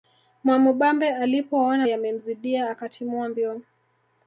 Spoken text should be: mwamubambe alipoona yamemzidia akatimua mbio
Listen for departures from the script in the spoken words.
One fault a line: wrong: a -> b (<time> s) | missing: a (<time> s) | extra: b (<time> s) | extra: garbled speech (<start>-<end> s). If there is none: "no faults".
no faults